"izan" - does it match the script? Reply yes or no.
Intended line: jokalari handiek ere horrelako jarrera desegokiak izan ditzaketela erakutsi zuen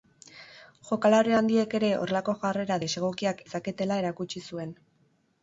no